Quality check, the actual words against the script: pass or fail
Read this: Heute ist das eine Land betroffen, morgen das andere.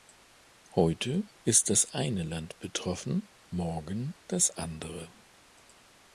pass